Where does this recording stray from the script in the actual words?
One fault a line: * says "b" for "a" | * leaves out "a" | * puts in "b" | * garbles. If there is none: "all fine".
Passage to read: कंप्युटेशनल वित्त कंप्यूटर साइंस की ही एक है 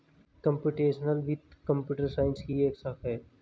* puts in "शाखा"